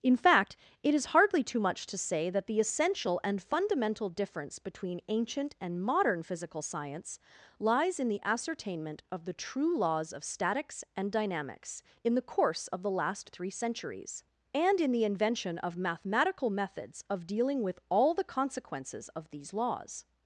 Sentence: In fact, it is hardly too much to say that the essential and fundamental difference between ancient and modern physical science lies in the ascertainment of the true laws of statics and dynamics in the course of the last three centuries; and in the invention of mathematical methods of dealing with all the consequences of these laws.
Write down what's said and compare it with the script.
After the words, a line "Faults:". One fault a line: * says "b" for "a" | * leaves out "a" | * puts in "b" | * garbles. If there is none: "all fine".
In fact, it is hardly too much to say that the essential and fundamental difference between ancient and modern physical science lies in the ascertainment of the true laws of statics and dynamics in the course of the last three centuries; and in the invention of mathematical methods of dealing with all the consequences of these laws.
Faults:
all fine